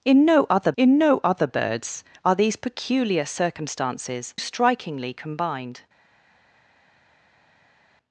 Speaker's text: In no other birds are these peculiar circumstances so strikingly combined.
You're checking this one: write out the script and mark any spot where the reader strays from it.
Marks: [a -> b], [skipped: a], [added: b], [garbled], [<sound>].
In no other [added: in no other] birds are these peculiar circumstances [skipped: so] strikingly combined.